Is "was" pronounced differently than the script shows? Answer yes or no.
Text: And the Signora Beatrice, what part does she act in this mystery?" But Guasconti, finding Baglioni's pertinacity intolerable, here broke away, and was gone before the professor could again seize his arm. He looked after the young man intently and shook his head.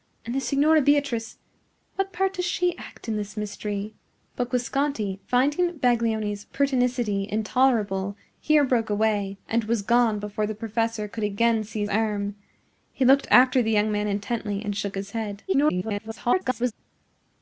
no